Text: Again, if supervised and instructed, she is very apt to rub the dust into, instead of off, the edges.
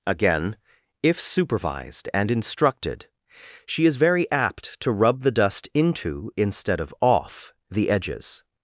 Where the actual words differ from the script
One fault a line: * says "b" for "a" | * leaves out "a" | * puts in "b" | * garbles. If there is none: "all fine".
all fine